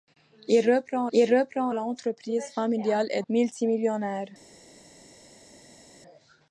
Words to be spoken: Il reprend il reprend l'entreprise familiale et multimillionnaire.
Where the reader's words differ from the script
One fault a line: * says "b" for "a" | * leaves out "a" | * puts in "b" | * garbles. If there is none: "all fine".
all fine